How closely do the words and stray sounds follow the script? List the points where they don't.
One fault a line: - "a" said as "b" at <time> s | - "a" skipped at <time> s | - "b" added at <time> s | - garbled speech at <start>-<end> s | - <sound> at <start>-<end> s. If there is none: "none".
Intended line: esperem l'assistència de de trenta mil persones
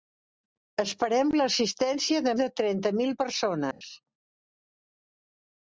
- dropout at 3.7-3.8 s